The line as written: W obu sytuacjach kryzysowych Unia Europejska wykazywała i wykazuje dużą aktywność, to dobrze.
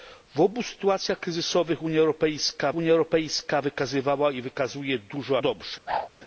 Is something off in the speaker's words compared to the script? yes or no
yes